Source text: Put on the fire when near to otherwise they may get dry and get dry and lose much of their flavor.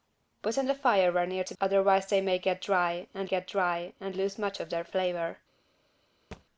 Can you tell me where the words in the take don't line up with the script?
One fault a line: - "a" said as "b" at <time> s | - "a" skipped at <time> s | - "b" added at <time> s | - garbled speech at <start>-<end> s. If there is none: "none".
none